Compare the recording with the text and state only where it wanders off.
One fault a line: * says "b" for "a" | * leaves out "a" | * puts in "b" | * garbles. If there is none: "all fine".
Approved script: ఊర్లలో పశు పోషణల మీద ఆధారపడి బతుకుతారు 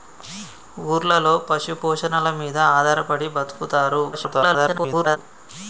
* garbles